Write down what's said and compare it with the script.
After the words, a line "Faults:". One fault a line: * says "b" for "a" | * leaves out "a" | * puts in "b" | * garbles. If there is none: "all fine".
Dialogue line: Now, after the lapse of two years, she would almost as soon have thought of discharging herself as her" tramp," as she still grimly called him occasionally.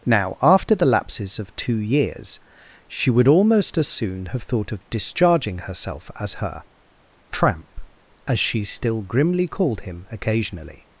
Now, after the lapses of two years, she would almost as soon have thought of discharging herself as her" tramp," as she still grimly called him occasionally.
Faults:
* says "lapses" for "lapse"